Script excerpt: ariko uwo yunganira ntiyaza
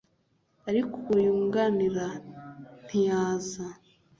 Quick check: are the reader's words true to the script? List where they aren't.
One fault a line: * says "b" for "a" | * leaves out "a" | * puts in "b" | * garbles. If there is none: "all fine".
all fine